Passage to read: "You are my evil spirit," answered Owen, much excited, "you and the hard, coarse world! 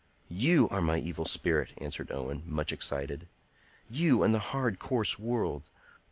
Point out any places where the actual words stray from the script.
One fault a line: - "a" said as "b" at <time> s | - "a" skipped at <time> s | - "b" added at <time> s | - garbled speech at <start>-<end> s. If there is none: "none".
none